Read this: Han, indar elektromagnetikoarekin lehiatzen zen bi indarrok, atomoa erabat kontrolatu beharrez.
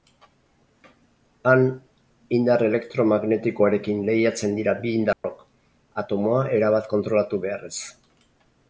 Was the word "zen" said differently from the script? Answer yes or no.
yes